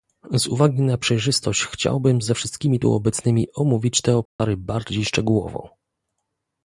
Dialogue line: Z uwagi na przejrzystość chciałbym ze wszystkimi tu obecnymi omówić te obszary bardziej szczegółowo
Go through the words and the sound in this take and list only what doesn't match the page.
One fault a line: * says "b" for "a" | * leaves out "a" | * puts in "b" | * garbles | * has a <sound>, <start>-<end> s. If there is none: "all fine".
* has a dropout, 4.3-4.4 s